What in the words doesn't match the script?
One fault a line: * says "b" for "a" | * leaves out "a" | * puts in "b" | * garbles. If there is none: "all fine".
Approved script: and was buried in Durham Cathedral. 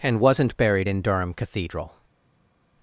* says "wasn't" for "was"